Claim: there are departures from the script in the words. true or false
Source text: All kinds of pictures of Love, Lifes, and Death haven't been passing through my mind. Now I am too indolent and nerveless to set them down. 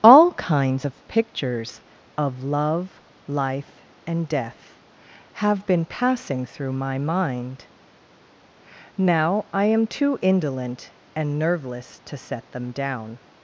true